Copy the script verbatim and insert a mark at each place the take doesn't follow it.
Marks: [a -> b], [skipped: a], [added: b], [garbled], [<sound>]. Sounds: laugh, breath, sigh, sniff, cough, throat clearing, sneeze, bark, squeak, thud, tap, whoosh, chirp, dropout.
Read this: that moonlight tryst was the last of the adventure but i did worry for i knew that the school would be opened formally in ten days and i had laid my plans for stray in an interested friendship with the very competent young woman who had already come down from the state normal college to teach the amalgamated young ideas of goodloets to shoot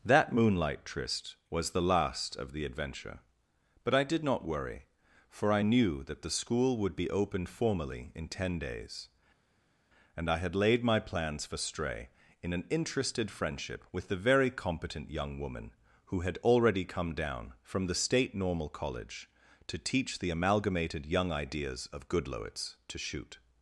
that moonlight tryst was the last of the adventure but i did [added: not] worry for i knew that the school would be opened formally in ten days and i had laid my plans for stray in an interested friendship with the very competent young woman who had already come down from the state normal college to teach the amalgamated young ideas of goodloets to shoot